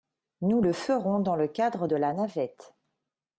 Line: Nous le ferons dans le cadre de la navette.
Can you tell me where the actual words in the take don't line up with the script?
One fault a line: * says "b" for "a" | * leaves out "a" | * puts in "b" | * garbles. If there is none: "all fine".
all fine